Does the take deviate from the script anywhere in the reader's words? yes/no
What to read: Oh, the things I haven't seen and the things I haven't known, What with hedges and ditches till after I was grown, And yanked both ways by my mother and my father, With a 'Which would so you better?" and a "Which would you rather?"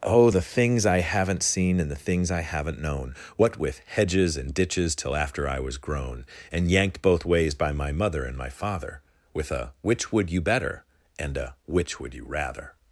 yes